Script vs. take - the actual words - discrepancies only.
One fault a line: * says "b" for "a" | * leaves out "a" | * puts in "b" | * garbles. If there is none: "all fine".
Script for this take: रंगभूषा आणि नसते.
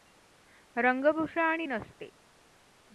all fine